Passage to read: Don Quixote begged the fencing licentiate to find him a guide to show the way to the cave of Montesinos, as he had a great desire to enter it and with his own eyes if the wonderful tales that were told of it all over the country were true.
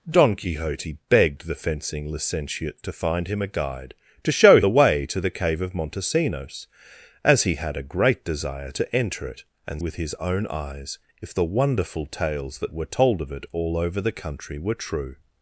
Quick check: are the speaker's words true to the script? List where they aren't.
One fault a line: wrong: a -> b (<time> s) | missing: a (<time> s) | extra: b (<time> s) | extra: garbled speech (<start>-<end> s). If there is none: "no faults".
no faults